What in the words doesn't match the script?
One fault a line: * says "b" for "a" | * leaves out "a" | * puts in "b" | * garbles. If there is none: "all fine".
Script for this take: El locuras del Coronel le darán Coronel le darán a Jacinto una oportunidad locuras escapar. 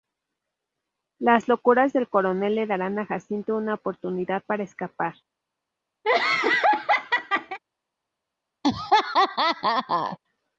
* says "Las" for "El"
* leaves out "Coronel le darán"
* says "para" for "locuras"